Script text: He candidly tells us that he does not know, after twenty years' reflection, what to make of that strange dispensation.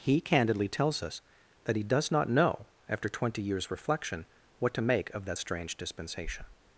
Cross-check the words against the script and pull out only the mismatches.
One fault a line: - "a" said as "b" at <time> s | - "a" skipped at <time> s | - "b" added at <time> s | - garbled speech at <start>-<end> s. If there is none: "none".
none